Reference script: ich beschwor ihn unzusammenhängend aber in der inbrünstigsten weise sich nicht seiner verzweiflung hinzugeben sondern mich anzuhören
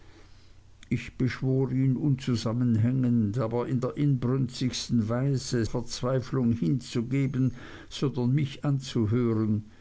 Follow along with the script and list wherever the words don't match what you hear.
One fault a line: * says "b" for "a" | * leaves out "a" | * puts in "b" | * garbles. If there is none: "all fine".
* leaves out "sich nicht seiner"